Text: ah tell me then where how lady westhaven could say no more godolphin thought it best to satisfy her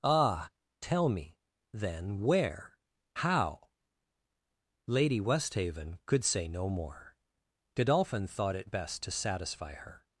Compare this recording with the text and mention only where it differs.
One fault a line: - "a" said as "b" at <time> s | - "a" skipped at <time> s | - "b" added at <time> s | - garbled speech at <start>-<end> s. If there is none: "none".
none